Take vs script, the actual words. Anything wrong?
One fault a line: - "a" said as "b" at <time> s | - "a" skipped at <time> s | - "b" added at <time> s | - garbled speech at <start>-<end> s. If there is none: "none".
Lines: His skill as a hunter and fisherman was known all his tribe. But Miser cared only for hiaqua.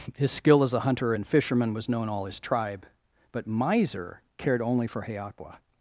none